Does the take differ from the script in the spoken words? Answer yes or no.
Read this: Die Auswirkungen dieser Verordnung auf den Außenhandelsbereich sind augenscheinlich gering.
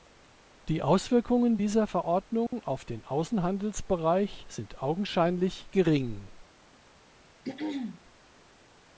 no